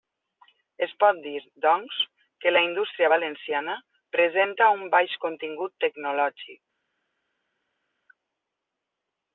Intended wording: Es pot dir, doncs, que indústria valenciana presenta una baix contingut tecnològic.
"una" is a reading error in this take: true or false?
true